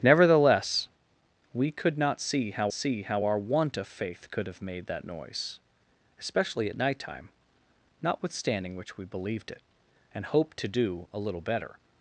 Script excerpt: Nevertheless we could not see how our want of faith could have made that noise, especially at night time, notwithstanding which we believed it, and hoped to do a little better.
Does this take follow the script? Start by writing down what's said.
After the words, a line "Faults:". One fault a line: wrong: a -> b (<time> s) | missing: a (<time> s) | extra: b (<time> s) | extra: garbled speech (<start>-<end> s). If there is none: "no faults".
Nevertheless we could not see how see how our want of faith could have made that noise, especially at night time, notwithstanding which we believed it, and hoped to do a little better.
Faults:
extra: see how (2.7 s)